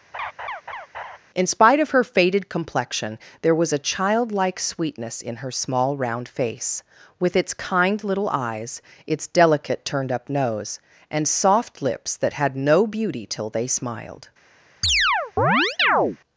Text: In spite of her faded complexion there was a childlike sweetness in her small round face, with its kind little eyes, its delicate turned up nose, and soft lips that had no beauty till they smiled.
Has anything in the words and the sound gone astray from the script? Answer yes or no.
yes